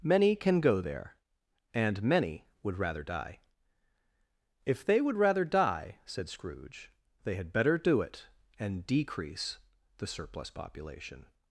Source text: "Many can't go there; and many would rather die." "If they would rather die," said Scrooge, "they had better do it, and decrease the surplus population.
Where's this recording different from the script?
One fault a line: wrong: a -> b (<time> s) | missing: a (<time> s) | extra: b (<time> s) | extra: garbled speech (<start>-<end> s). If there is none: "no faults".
wrong: can't -> can (0.3 s)